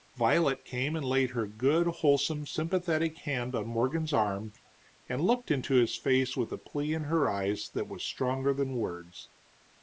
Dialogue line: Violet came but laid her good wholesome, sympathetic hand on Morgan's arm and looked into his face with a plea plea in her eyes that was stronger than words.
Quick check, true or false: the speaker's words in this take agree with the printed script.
false